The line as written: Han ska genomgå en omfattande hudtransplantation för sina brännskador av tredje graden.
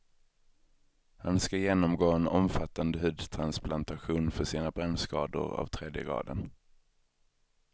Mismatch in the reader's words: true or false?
false